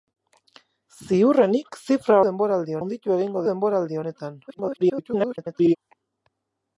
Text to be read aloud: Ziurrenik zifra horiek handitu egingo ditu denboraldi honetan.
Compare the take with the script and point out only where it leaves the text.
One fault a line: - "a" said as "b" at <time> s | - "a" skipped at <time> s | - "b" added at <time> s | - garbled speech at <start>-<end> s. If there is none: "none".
- "horiek" said as "denboraldi" at 2.3 s
- "ditu" skipped at 3.5 s
- garbled speech at 4.5-5.8 s